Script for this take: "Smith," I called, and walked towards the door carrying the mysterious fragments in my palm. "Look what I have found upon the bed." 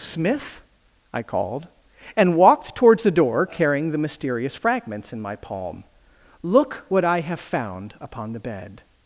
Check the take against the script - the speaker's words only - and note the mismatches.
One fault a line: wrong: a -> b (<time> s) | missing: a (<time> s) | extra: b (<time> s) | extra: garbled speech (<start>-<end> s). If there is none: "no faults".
no faults